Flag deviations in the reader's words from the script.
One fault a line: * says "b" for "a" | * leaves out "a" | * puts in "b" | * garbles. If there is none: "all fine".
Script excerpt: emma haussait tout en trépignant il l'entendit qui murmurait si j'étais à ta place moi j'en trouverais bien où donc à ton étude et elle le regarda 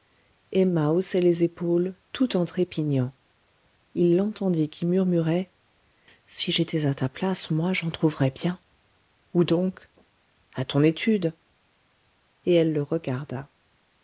* puts in "les épaules"